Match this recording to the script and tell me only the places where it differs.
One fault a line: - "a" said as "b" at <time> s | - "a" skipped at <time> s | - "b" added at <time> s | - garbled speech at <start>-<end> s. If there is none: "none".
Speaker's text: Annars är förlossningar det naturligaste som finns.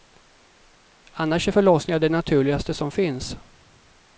none